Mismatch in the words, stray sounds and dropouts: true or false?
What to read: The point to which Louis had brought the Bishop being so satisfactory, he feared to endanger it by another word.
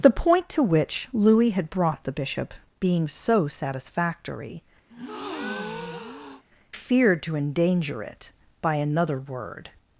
true